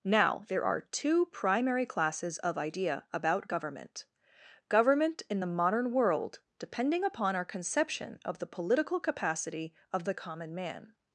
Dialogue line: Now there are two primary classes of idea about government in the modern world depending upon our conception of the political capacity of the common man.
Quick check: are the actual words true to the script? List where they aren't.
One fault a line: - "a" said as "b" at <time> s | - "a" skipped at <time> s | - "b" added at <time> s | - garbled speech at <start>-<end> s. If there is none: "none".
- "government" added at 4.7 s